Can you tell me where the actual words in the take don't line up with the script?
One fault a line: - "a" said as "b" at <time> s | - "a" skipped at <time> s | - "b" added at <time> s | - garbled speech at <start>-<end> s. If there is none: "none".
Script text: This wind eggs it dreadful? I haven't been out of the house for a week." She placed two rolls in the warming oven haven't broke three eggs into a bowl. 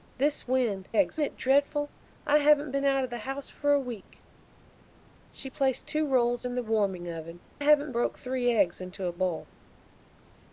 none